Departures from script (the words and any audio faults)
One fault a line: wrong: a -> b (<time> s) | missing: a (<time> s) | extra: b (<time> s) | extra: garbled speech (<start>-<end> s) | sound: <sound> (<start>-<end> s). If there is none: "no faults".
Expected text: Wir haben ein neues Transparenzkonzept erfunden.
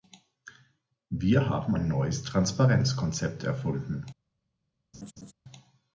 sound: laugh (4.9-5.3 s)